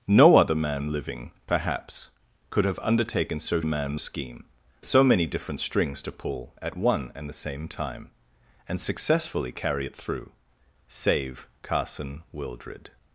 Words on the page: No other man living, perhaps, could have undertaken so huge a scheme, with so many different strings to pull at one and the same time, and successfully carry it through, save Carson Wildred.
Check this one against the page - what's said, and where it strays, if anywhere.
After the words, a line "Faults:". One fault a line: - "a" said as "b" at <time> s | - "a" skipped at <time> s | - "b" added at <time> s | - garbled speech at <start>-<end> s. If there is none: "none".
No other man living, perhaps, could have undertaken so man a scheme, so many different strings to pull at one and the same time, and successfully carry it through, save Carson Wildred.
Faults:
- "huge" said as "man" at 3.6 s
- "with" skipped at 4.4 s